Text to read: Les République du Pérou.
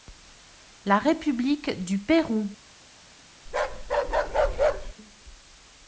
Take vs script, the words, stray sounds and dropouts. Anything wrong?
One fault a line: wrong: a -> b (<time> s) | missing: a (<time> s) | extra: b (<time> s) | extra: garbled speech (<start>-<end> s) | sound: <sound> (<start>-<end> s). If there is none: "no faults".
wrong: Les -> La (0.8 s)
sound: bark (3.5-4.9 s)